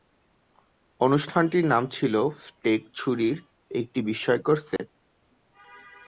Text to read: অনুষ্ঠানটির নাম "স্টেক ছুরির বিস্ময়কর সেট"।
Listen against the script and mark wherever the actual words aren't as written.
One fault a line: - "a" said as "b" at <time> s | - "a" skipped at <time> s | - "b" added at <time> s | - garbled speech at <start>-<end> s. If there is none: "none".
- "ছিল" added at 1.9 s
- "একটি" added at 3.7 s